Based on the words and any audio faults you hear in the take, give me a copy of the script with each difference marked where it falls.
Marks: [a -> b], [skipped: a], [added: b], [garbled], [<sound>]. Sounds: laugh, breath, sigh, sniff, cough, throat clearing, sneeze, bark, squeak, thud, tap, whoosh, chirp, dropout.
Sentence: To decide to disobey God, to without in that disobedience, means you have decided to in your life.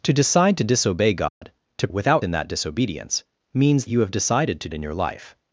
To decide to disobey God, [dropout] to without in that disobedience, means you have decided to in your life.